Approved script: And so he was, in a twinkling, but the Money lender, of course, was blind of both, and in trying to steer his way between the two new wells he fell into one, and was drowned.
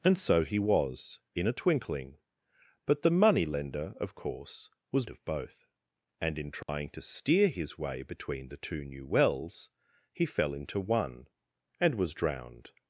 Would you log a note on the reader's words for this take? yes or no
yes